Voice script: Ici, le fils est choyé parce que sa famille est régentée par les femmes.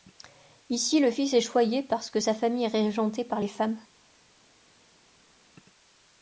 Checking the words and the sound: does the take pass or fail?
pass